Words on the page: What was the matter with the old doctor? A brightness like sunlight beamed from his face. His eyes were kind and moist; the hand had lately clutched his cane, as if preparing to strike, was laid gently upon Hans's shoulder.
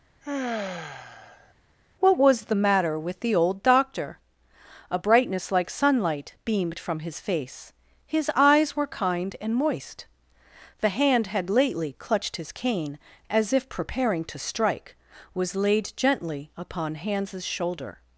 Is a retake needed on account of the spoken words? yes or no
no